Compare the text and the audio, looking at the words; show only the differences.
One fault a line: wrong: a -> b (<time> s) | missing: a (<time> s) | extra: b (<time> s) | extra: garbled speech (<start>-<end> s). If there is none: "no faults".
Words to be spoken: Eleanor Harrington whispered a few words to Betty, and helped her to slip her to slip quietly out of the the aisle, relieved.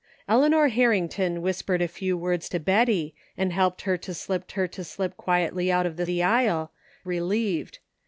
no faults